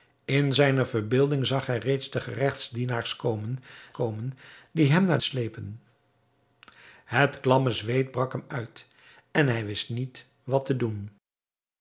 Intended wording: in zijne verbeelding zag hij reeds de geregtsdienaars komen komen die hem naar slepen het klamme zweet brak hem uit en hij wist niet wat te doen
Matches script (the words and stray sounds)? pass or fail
pass